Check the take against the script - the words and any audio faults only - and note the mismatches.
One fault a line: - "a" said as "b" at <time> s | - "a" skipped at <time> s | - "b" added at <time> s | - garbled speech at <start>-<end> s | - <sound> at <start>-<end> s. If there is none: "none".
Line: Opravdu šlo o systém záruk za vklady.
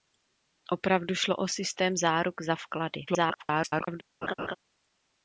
- garbled speech at 3.1-4.0 s
- laugh at 4.2-4.6 s